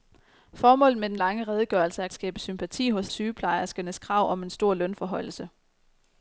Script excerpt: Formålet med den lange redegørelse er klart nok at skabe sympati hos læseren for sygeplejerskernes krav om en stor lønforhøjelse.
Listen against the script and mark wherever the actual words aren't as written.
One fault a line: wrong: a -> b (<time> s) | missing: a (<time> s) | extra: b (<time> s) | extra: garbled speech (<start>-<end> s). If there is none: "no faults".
missing: klart nok at (2.1 s)
missing: læseren for (3.1 s)